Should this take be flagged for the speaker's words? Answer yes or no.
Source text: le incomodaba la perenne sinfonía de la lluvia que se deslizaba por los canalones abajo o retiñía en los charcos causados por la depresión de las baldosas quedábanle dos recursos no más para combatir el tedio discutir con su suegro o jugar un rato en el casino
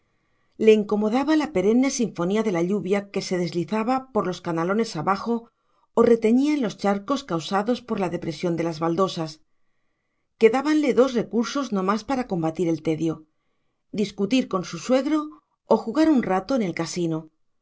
no